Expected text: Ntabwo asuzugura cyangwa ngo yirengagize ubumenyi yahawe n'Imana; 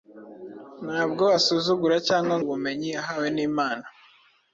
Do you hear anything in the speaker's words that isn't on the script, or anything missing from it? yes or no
yes